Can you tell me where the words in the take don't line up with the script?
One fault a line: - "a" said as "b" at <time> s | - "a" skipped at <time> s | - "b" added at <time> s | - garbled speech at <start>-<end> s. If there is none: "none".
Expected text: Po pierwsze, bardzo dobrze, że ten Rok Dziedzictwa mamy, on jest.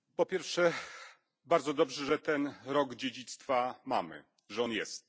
- "że" added at 4.5 s